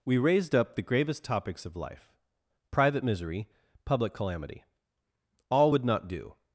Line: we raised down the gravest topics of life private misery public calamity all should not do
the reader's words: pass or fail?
fail